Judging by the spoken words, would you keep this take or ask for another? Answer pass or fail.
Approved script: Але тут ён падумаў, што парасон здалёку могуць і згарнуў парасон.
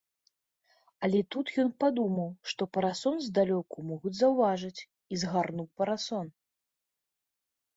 fail